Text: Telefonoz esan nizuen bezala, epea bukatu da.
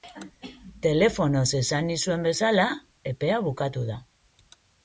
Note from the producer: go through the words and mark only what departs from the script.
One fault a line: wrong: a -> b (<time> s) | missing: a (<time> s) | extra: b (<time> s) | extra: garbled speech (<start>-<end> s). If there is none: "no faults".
no faults